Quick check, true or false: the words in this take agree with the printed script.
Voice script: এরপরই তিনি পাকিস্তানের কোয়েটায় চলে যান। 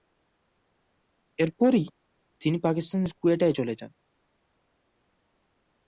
true